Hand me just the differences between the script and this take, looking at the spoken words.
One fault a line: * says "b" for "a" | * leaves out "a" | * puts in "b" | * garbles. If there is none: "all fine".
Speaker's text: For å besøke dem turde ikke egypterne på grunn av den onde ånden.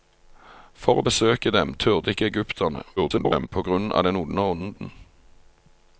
* garbles